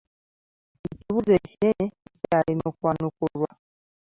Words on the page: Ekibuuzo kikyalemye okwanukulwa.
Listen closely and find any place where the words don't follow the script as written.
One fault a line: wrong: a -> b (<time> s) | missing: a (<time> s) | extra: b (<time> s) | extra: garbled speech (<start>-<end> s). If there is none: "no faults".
extra: ekinene (1.4 s)